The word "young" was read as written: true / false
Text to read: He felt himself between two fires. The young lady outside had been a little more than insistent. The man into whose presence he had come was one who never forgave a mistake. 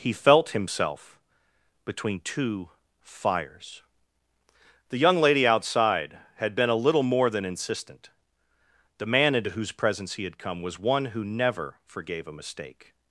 true